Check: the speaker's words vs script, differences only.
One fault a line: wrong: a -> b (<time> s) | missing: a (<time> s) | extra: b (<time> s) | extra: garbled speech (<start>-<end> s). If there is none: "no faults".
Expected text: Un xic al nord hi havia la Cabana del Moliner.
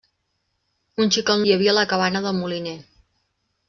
missing: nord (1.4 s)